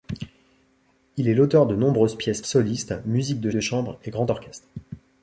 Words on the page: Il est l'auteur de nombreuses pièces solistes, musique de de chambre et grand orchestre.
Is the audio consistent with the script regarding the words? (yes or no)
yes